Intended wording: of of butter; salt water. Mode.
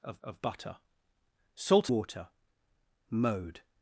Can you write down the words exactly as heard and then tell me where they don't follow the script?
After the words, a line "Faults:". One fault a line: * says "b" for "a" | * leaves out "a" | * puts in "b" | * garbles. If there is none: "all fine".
of of butter; salt water. Mode.
Faults:
all fine